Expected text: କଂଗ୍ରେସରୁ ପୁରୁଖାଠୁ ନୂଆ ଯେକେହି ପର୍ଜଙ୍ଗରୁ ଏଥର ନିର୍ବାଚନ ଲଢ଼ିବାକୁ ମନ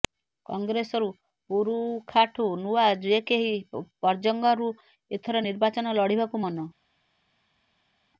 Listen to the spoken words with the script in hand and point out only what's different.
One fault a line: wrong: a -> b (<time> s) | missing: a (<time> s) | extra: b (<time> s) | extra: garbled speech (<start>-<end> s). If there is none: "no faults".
no faults